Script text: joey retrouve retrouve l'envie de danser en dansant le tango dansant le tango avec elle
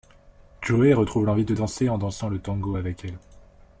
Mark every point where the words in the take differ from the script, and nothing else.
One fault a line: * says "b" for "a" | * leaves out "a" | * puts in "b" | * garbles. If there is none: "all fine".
* leaves out "retrouve"
* leaves out "dansant le tango"